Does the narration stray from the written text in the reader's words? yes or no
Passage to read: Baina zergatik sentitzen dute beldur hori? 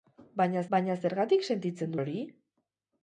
yes